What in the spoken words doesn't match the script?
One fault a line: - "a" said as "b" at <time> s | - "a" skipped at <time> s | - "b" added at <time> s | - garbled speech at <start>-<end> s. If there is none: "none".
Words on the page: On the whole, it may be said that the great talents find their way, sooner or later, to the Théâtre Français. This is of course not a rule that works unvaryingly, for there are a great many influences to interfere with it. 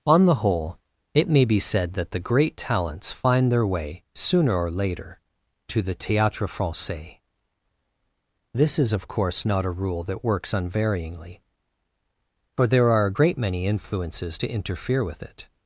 none